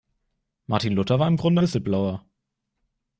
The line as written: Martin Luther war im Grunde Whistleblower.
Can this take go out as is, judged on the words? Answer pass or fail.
pass